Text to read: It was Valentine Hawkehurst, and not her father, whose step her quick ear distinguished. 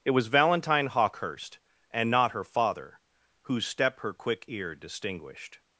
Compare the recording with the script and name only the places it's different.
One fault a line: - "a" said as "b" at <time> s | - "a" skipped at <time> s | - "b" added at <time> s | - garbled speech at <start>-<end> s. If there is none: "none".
none